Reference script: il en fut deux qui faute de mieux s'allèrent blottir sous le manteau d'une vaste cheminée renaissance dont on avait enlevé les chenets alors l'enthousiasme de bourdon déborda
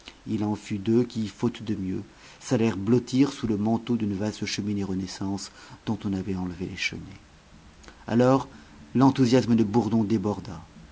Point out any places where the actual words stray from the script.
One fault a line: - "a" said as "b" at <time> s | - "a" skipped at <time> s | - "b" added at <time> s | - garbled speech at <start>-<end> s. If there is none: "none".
none